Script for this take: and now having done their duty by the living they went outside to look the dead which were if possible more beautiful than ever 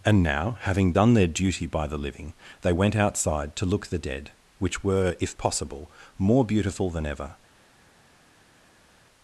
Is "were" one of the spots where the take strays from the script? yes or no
no